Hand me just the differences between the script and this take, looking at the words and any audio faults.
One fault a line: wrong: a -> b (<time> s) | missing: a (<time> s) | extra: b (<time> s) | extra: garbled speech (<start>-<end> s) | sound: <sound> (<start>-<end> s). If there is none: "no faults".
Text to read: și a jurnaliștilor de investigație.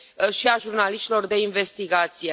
no faults